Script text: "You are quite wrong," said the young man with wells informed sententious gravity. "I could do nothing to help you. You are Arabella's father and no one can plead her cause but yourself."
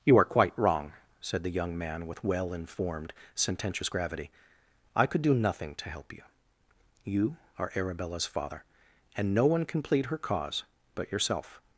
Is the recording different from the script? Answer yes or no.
yes